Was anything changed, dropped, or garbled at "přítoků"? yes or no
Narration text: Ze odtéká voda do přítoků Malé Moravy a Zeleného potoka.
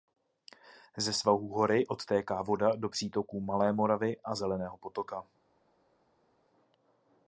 no